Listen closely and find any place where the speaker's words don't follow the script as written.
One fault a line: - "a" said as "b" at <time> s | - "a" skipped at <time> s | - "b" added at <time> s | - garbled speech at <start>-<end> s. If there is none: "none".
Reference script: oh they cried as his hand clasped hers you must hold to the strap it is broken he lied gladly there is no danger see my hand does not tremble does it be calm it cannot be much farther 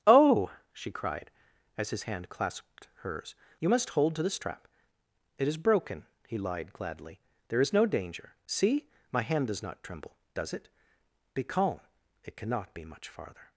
- "they" said as "she" at 0.7 s